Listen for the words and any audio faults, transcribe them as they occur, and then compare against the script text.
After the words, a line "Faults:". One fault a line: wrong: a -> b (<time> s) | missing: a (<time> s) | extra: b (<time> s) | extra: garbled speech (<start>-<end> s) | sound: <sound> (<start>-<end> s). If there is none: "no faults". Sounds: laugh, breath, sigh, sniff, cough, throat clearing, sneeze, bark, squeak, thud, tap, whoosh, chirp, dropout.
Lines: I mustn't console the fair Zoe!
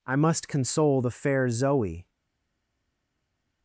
I must console the fair Zoe!
Faults:
wrong: mustn't -> must (0.1 s)